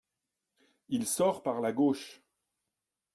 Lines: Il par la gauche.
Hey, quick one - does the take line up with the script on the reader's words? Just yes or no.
no